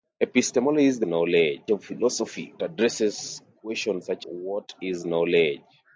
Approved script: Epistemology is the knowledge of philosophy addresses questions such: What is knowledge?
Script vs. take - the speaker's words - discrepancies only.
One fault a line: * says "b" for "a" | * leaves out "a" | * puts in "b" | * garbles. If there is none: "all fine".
all fine